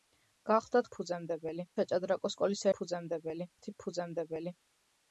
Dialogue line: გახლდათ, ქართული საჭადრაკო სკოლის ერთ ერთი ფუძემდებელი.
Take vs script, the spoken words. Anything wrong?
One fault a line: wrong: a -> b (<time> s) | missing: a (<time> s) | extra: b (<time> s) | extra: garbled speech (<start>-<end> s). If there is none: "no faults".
wrong: ქართული -> ფუძემდებელი (1.0 s)
wrong: ერთ -> ფუძემდებელი (2.8 s)